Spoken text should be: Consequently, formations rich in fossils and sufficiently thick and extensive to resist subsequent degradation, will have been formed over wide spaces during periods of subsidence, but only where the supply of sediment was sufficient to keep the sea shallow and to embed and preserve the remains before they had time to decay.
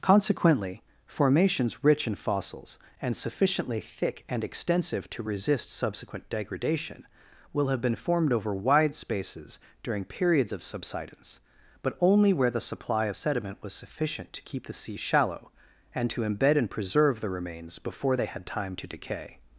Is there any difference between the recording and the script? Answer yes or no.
no